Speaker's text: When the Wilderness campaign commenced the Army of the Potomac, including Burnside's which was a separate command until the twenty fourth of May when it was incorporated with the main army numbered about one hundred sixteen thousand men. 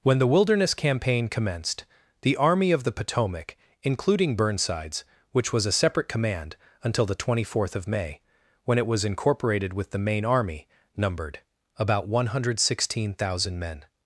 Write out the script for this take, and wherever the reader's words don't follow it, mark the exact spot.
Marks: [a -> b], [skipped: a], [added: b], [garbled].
When the Wilderness campaign commenced the Army of the Potomac, including Burnside's which was a separate command until the twenty fourth of May when it was incorporated with the main army numbered about one hundred sixteen thousand men.